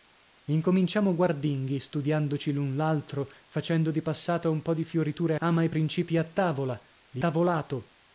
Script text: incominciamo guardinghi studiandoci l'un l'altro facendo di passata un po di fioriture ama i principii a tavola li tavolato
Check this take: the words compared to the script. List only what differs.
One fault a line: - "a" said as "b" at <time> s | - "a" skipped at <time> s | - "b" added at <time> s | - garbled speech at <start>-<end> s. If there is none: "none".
none